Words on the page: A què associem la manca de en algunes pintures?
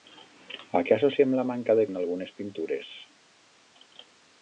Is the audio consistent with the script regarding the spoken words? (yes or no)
yes